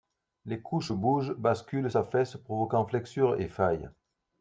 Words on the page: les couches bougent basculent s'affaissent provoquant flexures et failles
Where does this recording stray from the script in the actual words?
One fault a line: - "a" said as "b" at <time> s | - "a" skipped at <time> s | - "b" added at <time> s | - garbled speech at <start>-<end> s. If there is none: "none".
none